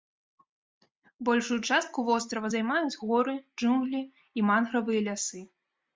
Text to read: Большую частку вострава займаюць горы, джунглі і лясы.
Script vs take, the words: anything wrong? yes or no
yes